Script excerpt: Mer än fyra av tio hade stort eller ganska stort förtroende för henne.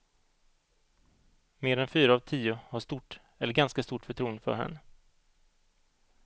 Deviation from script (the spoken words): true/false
true